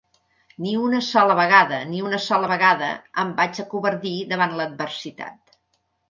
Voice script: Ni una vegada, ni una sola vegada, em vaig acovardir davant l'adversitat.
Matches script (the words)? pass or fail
fail